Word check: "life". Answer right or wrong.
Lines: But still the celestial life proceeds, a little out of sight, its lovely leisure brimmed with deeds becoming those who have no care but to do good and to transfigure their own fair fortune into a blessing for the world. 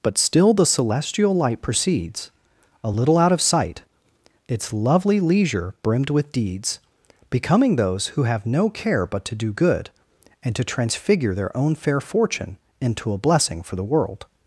wrong